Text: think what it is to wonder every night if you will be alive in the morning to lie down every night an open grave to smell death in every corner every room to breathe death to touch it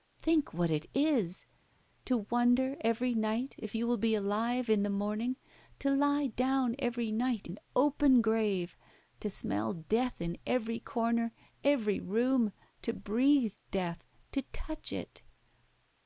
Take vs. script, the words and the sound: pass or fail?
pass